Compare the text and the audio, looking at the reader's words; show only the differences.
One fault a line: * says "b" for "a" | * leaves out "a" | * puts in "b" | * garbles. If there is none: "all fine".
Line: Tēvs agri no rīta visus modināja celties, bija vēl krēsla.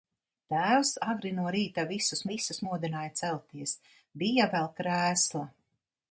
* puts in "visus"